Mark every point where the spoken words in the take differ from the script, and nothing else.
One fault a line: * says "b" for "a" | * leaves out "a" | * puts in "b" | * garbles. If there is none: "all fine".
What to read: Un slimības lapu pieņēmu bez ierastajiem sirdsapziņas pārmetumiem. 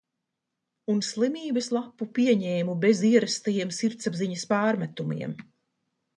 all fine